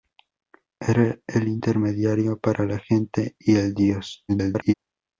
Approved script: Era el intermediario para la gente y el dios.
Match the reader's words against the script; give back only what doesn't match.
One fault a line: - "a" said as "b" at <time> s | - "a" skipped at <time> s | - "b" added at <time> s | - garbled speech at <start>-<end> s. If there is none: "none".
- garbled speech at 4.3-4.7 s